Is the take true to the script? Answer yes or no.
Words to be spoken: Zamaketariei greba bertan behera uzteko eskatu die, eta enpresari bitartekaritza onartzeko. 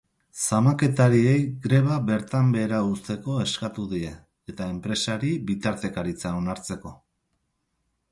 yes